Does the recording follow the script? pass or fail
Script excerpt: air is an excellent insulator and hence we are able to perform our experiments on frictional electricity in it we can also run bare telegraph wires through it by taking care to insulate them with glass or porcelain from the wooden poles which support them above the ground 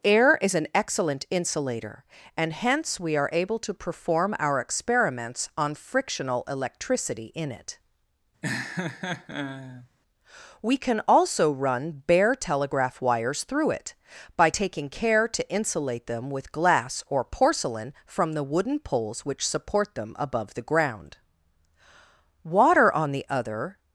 fail